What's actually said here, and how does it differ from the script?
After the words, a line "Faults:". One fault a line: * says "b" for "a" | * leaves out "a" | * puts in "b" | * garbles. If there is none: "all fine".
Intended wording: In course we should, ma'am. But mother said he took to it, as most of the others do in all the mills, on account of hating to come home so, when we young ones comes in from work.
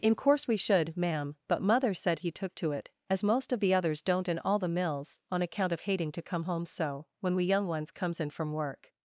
In course we should, ma'am. But mother said he took to it, as most of the others don't in all the mills, on account of hating to come home so, when we young ones comes in from work.
Faults:
* says "don't" for "do"